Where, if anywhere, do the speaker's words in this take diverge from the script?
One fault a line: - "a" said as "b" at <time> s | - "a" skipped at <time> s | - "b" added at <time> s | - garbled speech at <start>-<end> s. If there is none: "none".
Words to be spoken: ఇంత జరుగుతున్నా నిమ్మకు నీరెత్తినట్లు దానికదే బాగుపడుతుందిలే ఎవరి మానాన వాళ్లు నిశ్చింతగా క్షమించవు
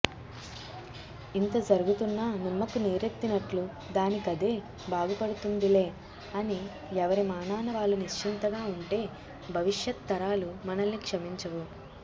- "అని" added at 6.3 s
- "ఉంటే భవిష్యత్తరాలు మనల్ని" added at 8.7 s